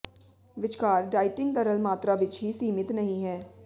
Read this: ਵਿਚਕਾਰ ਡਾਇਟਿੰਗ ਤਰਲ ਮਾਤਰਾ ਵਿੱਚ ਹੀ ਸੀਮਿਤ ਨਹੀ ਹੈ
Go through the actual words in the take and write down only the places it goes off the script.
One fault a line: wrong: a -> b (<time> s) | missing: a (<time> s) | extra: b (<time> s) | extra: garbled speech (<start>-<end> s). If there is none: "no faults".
no faults